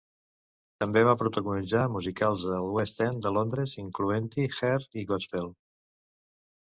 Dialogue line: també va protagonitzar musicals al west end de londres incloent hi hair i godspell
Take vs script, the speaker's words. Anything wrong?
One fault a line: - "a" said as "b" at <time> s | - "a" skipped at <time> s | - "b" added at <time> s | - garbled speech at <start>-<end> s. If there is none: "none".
none